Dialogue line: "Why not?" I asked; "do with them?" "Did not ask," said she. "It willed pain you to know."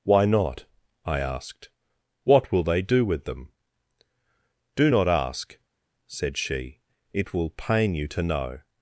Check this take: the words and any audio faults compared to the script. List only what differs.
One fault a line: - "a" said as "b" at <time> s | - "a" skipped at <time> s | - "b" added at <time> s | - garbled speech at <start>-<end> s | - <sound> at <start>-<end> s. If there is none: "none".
- "what will they" added at 2.2 s
- "Did" said as "Do" at 4.8 s
- "willed" said as "will" at 7.3 s